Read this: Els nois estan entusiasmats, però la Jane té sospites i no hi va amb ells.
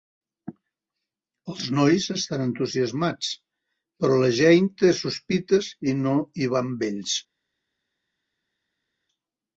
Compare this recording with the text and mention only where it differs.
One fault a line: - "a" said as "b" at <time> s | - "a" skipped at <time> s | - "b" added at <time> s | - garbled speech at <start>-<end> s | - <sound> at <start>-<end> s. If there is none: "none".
none